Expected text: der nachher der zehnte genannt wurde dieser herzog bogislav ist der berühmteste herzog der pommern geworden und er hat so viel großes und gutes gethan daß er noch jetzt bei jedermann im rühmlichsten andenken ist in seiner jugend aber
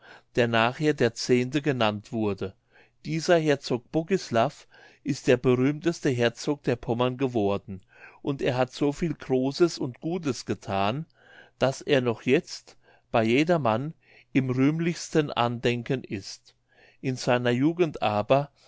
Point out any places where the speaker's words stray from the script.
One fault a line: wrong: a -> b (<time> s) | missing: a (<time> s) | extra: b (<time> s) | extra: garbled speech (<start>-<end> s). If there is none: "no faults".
no faults